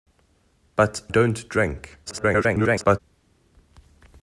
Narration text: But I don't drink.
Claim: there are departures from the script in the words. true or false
true